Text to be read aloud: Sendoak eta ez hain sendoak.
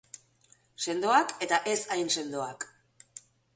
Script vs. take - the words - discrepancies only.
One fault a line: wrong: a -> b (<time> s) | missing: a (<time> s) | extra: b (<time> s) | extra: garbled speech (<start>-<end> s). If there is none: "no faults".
no faults